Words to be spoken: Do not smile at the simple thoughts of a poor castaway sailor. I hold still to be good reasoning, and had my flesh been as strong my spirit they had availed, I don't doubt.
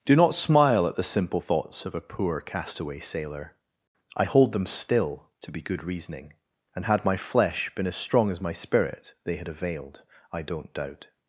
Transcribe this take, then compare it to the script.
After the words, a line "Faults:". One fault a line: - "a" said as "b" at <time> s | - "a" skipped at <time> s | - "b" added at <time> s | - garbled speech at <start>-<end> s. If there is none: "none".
Do not smile at the simple thoughts of a poor castaway sailor. I hold them still to be good reasoning, and had my flesh been as strong as my spirit they had availed, I don't doubt.
Faults:
- "them" added at 4.5 s
- "as" added at 8.3 s